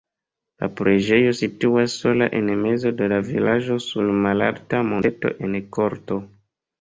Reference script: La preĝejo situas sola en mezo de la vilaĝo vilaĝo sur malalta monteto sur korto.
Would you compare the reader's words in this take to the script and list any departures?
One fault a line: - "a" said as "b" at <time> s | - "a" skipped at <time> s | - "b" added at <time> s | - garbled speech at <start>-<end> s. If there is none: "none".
- "vilaĝo" skipped at 3.8 s
- "sur" said as "en" at 5.5 s